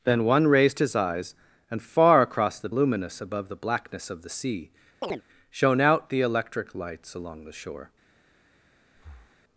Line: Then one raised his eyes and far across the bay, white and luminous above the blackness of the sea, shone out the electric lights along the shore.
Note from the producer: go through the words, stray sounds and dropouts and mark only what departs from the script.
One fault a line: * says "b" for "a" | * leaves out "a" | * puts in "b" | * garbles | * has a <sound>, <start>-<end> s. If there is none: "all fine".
* leaves out "bay white and"
* has a chirp, 5.0-5.2 s
* has a breath, 8.9-9.4 s